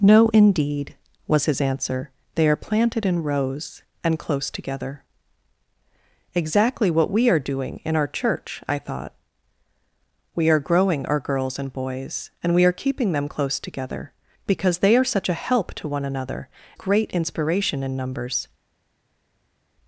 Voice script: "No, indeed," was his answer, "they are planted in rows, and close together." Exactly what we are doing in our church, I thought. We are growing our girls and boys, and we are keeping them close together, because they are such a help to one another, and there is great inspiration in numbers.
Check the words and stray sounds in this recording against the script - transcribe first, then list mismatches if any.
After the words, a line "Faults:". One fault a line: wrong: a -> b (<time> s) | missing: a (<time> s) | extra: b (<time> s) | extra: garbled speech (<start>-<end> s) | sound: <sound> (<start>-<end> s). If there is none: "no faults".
"No, indeed," was his answer, "they are planted in rows, and close together." Exactly what we are doing in our church, I thought. We are growing our girls and boys, and we are keeping them close together, because they are such a help to one another, great inspiration in numbers.
Faults:
missing: and there is (16.5 s)